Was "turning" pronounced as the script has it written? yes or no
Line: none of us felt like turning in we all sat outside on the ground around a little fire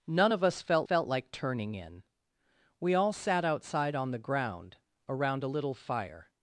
yes